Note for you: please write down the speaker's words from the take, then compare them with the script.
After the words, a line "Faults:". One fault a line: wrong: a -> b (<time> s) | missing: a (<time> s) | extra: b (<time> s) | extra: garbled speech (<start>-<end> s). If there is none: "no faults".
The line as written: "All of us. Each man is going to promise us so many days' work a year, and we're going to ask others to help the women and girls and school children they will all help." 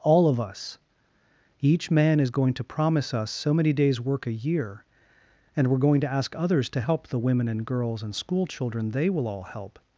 "All of us. Each man is going to promise us so many days' work a year, and we're going to ask others to help the women and girls and school children they will all help."
Faults:
no faults